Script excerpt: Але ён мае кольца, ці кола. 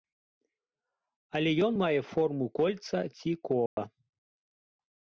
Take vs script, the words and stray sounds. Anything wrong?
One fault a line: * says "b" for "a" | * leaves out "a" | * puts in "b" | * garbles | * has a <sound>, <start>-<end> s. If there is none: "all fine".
* puts in "форму"
* has a dropout, 3.7-3.8 s